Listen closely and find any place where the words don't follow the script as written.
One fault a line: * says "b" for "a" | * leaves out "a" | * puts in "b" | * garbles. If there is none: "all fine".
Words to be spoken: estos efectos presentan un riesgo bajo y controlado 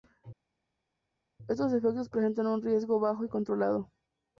all fine